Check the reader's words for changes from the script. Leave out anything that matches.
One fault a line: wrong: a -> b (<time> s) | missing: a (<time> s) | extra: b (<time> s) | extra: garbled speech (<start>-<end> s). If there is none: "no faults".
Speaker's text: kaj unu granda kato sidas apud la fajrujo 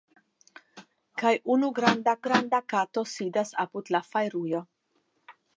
extra: granda (2.3 s)